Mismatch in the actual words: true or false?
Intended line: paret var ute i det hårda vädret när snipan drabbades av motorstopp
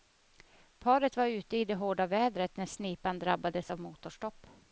false